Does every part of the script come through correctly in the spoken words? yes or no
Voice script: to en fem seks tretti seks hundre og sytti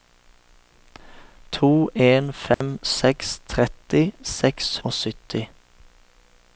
no